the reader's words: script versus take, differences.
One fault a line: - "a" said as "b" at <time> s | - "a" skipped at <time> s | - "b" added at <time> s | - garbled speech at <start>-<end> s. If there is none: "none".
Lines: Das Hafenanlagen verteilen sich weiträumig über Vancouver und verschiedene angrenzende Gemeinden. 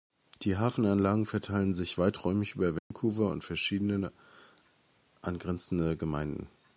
- "Das" said as "Die" at 0.4 s